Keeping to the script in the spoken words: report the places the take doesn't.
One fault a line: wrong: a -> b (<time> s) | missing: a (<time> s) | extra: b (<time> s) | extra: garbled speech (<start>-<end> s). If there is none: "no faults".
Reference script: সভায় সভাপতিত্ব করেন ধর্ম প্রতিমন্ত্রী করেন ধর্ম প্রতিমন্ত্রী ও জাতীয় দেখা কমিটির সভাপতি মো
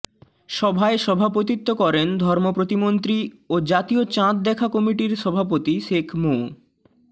missing: করেন ধর্ম প্রতিমন্ত্রী (3.2 s)
extra: চাঁদ (4.1 s)
extra: শেখ (5.9 s)